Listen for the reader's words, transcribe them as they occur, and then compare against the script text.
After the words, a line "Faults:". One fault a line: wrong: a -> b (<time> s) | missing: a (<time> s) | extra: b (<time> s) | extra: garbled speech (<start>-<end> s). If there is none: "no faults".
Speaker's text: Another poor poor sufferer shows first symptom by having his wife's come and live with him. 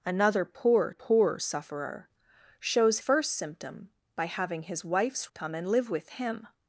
Another poor poor sufferer shows first symptom by having his wife's come and live with him.
Faults:
no faults